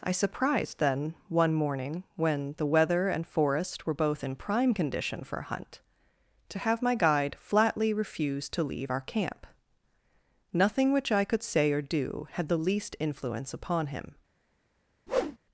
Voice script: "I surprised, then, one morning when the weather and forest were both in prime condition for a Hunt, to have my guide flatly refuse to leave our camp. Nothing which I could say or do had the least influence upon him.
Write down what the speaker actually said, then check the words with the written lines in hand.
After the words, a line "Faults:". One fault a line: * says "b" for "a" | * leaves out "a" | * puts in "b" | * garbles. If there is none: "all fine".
"I surprised, then, one morning when the weather and forest were both in prime condition for a Hunt, to have my guide flatly refuse to leave our camp. Nothing which I could say or do had the least influence upon him.
Faults:
all fine